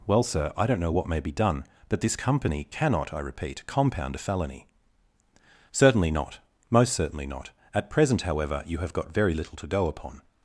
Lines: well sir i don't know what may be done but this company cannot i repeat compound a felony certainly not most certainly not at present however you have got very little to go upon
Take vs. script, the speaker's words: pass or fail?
pass